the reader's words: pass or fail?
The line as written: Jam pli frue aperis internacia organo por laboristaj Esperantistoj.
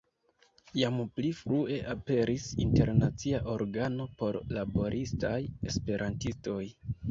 pass